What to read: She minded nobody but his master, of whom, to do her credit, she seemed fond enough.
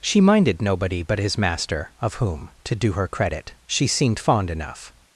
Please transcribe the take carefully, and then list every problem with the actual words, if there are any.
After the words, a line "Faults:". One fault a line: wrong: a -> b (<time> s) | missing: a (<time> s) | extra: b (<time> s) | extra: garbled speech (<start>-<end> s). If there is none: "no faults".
She minded nobody but his master, of whom, to do her credit, she seemed fond enough.
Faults:
no faults